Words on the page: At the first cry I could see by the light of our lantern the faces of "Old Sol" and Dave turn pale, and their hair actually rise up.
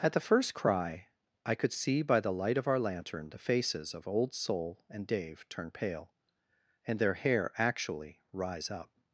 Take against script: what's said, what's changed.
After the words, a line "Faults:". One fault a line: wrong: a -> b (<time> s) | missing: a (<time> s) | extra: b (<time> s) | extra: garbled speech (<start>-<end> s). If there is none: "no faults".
At the first cry I could see by the light of our lantern the faces of "Old Sol" and Dave turn pale, and their hair actually rise up.
Faults:
no faults